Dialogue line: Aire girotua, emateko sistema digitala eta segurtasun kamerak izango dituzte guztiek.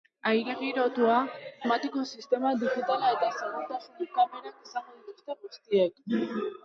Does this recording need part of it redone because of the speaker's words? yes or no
no